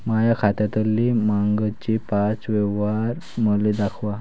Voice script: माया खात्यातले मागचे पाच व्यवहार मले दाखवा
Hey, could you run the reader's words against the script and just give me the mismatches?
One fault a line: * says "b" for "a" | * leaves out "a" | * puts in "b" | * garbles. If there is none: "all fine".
all fine